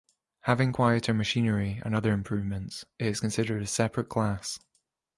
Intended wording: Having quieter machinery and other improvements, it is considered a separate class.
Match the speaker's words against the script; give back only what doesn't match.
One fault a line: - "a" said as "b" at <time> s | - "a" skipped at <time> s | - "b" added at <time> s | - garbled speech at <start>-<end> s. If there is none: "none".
none